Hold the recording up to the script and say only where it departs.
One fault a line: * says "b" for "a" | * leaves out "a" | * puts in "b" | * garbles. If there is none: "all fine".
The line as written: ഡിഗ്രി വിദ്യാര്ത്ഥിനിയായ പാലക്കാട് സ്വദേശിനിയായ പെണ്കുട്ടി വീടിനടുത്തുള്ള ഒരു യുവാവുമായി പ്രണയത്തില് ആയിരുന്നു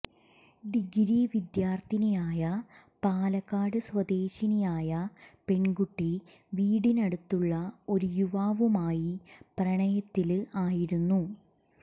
all fine